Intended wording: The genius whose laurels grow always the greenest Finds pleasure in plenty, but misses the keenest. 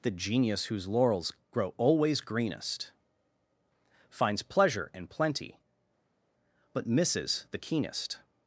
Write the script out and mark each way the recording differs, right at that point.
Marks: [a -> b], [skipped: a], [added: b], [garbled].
The genius whose laurels grow always [skipped: the] greenest Finds pleasure in plenty, but misses the keenest.